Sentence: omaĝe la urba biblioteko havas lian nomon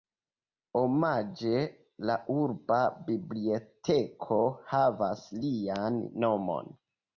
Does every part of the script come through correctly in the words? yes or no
yes